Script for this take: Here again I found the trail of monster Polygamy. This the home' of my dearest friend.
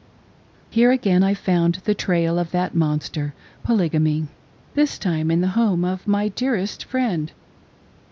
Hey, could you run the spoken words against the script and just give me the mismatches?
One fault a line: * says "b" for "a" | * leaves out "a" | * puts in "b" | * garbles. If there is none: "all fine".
* puts in "that"
* puts in "time in"